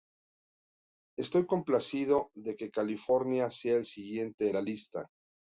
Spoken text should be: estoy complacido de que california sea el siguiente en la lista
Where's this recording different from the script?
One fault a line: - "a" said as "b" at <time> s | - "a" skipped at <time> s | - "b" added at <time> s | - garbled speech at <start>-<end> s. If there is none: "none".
- "en" skipped at 4.5 s